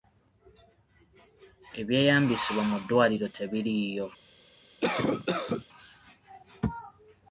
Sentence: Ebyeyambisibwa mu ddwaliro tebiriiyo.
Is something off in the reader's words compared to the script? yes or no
no